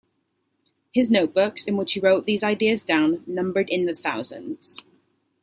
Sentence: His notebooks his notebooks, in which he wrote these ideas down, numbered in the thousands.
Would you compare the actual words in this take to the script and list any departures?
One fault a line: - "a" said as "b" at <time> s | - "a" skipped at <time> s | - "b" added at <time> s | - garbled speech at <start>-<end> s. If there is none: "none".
- "his notebooks" skipped at 1.7 s